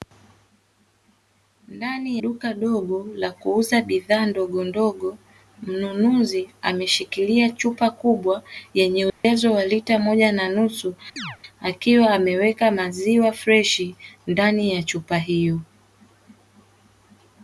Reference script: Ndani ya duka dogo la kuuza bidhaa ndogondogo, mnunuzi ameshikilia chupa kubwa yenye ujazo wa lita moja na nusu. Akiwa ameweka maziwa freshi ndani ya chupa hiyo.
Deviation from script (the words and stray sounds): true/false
true